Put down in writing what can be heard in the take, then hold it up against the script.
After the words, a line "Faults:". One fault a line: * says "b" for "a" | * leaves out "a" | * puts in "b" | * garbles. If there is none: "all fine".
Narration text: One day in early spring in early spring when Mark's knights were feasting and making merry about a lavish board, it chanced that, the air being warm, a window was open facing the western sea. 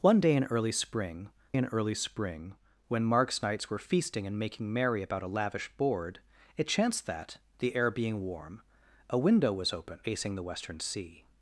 One day in early spring in early spring when Mark's knights were feasting and making merry about a lavish board, it chanced that, the air being warm, a window was open facing the western sea.
Faults:
all fine